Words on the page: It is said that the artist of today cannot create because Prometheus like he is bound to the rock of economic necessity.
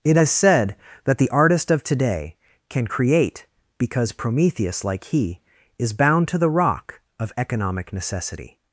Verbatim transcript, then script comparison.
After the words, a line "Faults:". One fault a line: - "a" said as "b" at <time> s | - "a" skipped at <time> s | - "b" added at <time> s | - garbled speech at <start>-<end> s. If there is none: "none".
It is said that the artist of today can create because Prometheus like he is bound to the rock of economic necessity.
Faults:
- "cannot" said as "can" at 2.7 s